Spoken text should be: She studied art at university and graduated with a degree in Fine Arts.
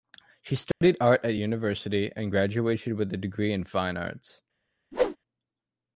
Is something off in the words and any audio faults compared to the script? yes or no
yes